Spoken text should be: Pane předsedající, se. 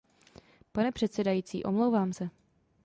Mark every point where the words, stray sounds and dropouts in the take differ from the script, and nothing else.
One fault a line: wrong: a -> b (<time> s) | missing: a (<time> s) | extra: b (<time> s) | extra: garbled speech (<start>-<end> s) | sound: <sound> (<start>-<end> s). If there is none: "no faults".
extra: omlouvám (1.6 s)